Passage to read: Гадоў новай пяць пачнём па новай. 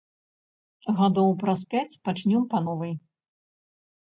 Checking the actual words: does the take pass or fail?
fail